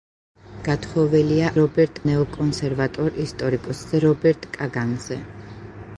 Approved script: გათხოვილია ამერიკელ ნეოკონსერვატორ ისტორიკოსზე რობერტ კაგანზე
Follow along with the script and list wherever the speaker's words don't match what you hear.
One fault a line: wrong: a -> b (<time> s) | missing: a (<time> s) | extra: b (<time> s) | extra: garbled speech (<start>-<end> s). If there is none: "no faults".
wrong: ამერიკელ -> რობერტ (1.6 s)